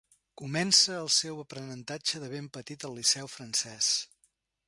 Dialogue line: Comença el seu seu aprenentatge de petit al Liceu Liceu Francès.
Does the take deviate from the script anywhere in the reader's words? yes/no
yes